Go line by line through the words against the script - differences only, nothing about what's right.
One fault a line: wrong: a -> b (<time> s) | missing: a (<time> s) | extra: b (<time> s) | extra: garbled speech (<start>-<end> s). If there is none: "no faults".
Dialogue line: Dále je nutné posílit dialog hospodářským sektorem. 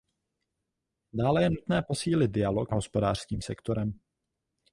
no faults